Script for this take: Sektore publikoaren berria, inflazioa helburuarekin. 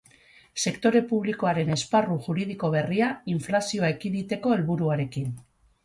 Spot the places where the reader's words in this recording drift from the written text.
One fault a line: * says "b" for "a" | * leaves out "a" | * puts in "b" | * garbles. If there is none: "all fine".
* puts in "esparru juridiko"
* puts in "ekiditeko"